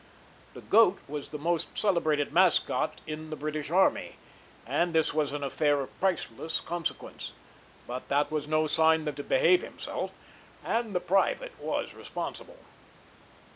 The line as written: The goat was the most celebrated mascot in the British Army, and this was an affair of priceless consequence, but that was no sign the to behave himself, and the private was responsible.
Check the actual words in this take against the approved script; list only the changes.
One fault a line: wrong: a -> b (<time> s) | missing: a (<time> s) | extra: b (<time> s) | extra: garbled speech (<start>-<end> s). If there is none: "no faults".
no faults